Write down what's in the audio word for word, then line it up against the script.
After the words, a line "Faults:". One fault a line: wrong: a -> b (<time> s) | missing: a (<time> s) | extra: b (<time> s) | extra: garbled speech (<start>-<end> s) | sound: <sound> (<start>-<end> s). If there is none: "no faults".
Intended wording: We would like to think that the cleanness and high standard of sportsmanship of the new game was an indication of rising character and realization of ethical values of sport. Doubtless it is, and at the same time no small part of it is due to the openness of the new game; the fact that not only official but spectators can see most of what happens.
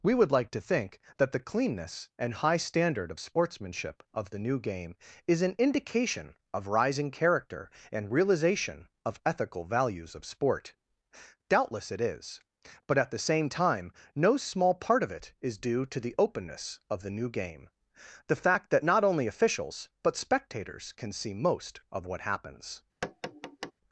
We would like to think that the cleanness and high standard of sportsmanship of the new game is an indication of rising character and realization of ethical values of sport. Doubtless it is, but at the same time no small part of it is due to the openness of the new game; the fact that not only officials but spectators can see most of what happens.
Faults:
wrong: was -> is (5.3 s)
wrong: and -> but (12.9 s)
wrong: official -> officials (19.3 s)
sound: tap (23.0-23.7 s)